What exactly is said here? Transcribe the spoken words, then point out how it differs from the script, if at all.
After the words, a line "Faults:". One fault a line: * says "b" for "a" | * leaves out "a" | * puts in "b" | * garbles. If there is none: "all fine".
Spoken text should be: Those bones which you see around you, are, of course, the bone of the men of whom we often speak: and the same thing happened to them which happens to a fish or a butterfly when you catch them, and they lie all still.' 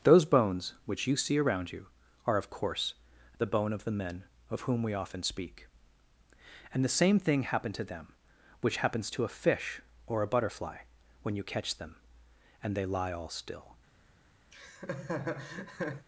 Those bones which you see around you, are, of course, the bone of the men of whom we often speak: and the same thing happened to them which happens to a fish or a butterfly when you catch them, and they lie all still.'
Faults:
all fine